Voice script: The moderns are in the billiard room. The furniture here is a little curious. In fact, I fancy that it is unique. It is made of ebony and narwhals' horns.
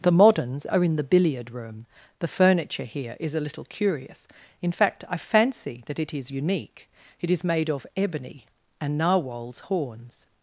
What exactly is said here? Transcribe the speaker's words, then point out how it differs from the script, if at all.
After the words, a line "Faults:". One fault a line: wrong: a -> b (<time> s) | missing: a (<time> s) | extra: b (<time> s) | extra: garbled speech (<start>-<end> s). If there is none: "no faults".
The moderns are in the billiard room. The furniture here is a little curious. In fact, I fancy that it is unique. It is made of ebony and narwhals' horns.
Faults:
no faults